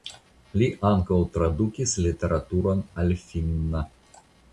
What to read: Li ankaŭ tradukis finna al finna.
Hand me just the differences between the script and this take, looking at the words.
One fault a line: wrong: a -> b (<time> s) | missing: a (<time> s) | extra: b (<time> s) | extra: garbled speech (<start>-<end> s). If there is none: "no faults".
wrong: finna -> literaturon (2.0 s)